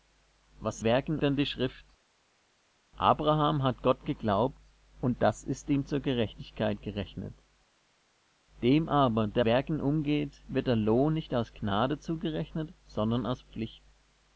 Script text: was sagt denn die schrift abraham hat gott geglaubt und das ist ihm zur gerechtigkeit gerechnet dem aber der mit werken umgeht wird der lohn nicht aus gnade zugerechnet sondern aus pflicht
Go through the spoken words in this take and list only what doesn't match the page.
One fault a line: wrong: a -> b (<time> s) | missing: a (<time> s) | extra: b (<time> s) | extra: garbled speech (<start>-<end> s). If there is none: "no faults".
wrong: sagt -> werken (0.8 s)
missing: mit (9.4 s)